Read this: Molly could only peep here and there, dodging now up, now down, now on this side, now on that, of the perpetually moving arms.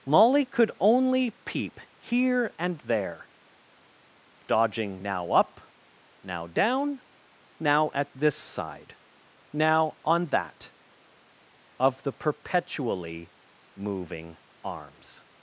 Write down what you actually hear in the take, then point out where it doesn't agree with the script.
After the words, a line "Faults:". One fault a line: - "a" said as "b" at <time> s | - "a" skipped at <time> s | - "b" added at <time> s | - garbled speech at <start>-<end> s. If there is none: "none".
Molly could only peep here and there, dodging now up, now down, now at this side, now on that, of the perpetually moving arms.
Faults:
- "on" said as "at" at 7.9 s